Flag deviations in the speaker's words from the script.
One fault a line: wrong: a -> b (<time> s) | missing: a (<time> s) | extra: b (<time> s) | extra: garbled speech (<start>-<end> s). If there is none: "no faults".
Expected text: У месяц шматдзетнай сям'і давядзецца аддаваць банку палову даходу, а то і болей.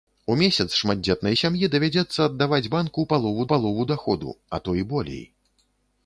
extra: палову (3.5 s)